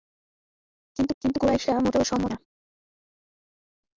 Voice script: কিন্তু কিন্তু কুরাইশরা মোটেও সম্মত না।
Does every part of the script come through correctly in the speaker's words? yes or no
yes